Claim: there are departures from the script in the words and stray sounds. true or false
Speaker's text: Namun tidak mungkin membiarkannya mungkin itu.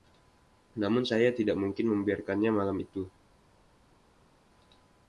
true